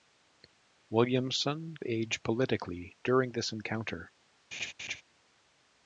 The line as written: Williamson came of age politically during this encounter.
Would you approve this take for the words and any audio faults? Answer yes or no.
no